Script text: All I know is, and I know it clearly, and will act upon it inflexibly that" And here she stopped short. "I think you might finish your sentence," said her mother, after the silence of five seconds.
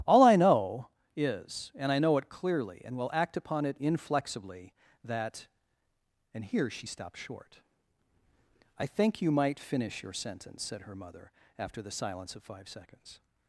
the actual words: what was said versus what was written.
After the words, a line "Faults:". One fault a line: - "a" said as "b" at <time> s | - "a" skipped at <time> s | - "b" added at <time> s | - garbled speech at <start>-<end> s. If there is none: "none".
All I know is, and I know it clearly, and will act upon it inflexibly that" And here she stopped short. "I think you might finish your sentence," said her mother, after the silence of five seconds.
Faults:
none